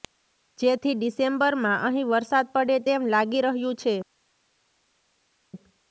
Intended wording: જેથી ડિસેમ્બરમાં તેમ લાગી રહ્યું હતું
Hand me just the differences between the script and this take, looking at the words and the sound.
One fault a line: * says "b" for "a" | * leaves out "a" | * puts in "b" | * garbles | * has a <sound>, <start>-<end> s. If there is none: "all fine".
* puts in "અહીં વરસાદ પડે"
* says "છે" for "હતું"